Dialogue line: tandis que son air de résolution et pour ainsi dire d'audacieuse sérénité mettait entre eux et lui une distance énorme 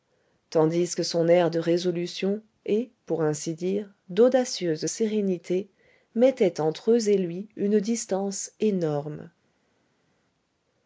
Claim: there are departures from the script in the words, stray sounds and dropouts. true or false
false